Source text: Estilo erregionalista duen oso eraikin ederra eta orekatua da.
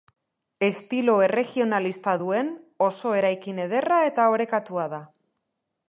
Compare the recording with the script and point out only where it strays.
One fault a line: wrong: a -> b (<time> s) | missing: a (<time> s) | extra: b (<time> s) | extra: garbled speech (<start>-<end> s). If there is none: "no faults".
no faults